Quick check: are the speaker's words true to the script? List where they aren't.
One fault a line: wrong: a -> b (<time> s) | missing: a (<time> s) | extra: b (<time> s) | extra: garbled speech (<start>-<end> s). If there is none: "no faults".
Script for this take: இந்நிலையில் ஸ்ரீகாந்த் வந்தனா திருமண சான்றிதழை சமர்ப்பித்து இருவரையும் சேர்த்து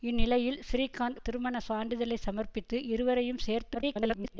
missing: வந்தனா (1.2 s)
extra: garbled speech (3.7-4.4 s)